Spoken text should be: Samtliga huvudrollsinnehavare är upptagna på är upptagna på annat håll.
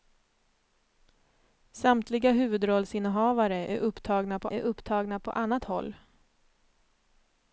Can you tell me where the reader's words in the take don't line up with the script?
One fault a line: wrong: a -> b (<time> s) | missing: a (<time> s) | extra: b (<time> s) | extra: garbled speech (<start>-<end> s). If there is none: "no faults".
no faults